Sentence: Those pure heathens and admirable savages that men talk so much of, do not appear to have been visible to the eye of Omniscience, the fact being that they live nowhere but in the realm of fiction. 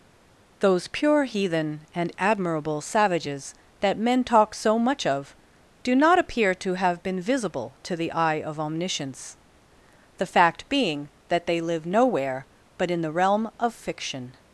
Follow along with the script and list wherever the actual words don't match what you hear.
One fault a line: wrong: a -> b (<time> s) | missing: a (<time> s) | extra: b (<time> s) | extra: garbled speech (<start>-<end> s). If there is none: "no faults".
wrong: heathens -> heathen (1.2 s)